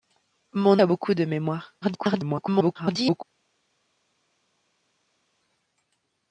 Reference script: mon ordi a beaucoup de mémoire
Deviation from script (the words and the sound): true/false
true